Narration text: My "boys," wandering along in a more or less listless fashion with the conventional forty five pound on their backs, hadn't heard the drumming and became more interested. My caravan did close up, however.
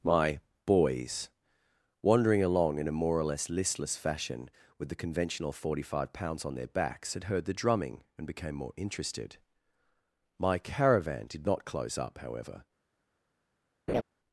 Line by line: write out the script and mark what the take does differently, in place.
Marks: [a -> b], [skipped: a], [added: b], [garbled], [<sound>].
My "boys," wandering along in a more or less listless fashion with the conventional forty five [pound -> pounds] on their backs, [hadn't -> had] heard the drumming and became more interested. My caravan did [added: not] close up, however. [laugh]